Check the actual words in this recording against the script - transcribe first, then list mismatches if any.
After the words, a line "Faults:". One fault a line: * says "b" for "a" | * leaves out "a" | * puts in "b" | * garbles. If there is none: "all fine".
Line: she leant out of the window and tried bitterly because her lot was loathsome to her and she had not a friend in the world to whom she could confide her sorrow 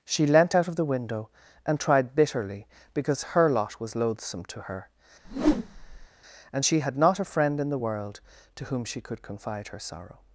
she leant out of the window and tried bitterly because her lot was loathsome to her and she had not a friend in the world to whom she could confide her sorrow
Faults:
all fine